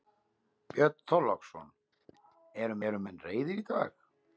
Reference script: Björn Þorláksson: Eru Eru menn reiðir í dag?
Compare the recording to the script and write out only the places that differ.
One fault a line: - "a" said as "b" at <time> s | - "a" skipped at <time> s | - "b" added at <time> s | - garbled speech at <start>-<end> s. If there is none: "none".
none